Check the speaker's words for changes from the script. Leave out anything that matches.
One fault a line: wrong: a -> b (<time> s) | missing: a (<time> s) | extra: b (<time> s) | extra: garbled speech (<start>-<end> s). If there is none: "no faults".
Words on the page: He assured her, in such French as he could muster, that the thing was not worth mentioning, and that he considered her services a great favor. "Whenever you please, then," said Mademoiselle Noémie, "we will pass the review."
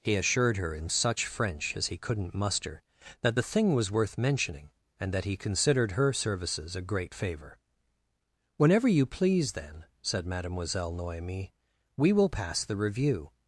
wrong: could -> couldn't (2.0 s)
missing: not (3.9 s)